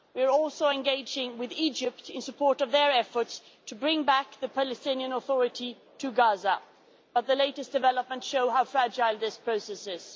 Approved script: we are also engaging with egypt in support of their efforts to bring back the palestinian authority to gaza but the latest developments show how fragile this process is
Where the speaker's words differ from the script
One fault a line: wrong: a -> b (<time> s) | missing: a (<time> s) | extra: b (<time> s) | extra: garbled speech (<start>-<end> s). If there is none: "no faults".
no faults